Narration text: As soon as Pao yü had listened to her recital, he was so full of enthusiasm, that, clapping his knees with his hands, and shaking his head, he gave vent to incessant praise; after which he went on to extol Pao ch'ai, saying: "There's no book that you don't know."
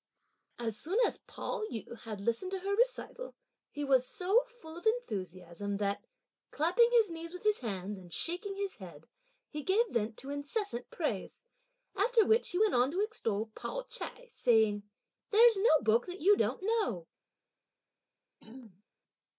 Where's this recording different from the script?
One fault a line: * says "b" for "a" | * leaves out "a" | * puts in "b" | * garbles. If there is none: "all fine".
all fine